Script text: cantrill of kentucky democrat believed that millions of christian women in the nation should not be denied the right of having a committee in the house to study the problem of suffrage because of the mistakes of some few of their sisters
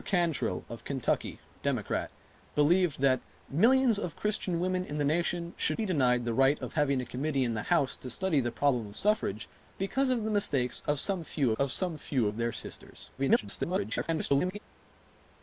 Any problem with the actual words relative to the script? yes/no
yes